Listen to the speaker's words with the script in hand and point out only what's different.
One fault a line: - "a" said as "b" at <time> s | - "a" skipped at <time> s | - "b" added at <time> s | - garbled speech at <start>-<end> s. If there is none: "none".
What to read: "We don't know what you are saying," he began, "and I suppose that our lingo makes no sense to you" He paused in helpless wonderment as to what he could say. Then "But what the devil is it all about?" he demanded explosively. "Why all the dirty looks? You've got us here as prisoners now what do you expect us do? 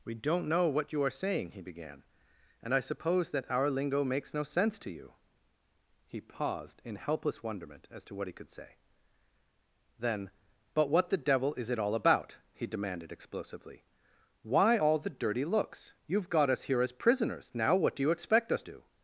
none